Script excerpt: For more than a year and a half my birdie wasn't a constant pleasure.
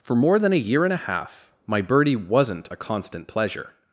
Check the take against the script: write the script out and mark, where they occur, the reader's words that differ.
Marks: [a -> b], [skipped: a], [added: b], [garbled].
For more than a year and a half my birdie wasn't a constant pleasure.